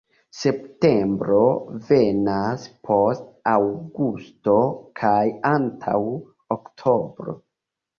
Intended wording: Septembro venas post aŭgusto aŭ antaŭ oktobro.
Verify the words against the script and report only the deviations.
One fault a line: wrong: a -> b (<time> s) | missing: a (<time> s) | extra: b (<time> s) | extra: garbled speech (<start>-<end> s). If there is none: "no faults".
wrong: aŭ -> kaj (5.0 s)